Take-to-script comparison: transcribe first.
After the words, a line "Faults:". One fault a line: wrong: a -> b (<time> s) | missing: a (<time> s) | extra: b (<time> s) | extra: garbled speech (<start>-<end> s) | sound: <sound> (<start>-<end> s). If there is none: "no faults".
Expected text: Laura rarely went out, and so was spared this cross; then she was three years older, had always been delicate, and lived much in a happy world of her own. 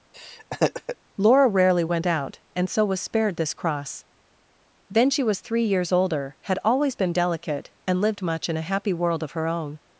Laura rarely went out, and so was spared this cross; then she was three years older, had always been delicate, and lived much in a happy world of her own.
Faults:
sound: laugh (0.1-1.0 s)